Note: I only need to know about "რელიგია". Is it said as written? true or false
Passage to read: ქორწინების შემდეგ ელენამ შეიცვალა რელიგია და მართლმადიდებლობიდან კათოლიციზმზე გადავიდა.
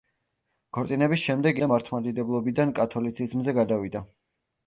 false